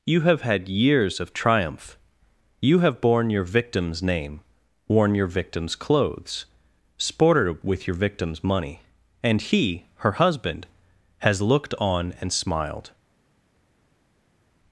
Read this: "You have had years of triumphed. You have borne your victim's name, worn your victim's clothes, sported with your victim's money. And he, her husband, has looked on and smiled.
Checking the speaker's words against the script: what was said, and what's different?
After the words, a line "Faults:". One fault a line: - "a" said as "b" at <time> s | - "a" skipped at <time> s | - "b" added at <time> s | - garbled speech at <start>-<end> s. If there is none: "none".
"You have had years of triumph. You have borne your victim's name, worn your victim's clothes, sported with your victim's money. And he, her husband, has looked on and smiled.
Faults:
- "triumphed" said as "triumph" at 1.3 s